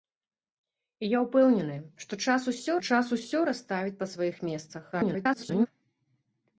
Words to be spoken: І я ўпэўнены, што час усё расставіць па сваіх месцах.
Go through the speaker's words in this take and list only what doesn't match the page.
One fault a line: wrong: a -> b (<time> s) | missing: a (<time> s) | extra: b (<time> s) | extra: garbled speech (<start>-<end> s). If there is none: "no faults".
extra: час усё (2.9 s)
extra: garbled speech (4.9-5.7 s)